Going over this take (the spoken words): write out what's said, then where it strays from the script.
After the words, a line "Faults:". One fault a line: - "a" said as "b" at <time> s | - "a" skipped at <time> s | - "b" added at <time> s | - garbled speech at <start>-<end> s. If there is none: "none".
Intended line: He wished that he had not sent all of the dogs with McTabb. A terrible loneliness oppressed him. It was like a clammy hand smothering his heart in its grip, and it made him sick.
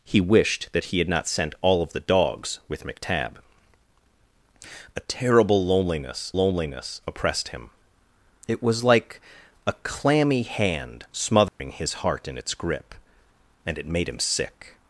He wished that he had not sent all of the dogs with McTabb. A terrible loneliness loneliness oppressed him. It was like a clammy hand smothering his heart in its grip, and it made him sick.
Faults:
- "loneliness" added at 6.3 s